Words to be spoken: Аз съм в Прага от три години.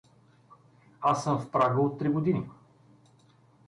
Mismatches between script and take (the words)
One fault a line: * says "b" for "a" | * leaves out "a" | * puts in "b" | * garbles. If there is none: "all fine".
all fine